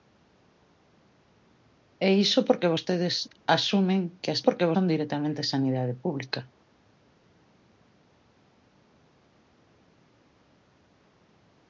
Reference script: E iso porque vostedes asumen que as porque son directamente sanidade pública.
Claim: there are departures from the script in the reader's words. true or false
false